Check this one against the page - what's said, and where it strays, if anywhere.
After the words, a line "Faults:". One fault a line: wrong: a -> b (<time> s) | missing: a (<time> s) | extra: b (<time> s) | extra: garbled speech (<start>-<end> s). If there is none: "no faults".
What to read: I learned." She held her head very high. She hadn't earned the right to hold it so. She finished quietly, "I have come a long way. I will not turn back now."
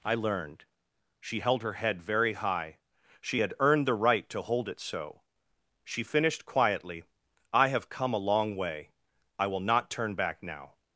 I learned." She held her head very high. She had earned the right to hold it so. She finished quietly, "I have come a long way. I will not turn back now."
Faults:
wrong: hadn't -> had (3.4 s)